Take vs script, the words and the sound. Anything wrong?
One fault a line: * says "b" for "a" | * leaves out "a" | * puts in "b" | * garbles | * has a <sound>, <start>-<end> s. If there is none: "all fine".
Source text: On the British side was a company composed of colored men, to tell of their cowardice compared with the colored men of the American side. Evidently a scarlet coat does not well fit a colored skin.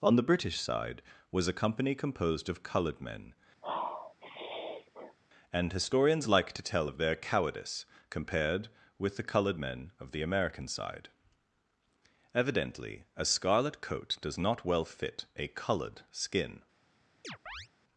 * has a sniff, 3.6-5.2 s
* puts in "and historians like"
* has a chirp, 17.2-17.7 s